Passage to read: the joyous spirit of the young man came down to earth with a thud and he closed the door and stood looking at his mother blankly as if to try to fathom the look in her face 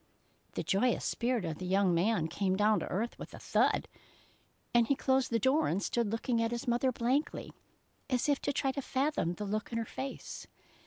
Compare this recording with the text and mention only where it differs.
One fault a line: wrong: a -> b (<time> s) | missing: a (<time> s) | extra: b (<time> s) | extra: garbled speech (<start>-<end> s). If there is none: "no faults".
no faults